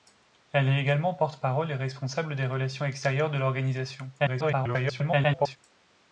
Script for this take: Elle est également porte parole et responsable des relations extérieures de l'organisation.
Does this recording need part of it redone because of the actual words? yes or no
yes